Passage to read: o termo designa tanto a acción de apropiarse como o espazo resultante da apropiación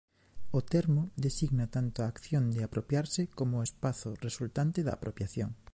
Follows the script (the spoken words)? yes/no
yes